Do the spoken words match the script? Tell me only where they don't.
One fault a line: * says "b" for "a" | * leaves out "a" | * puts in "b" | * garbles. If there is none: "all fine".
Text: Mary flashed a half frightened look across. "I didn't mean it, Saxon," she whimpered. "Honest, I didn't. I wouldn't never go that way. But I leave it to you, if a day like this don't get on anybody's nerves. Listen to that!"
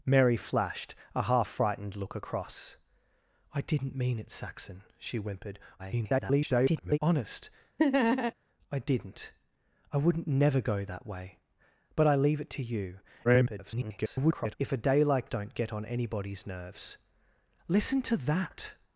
* garbles
* garbles
* leaves out "this"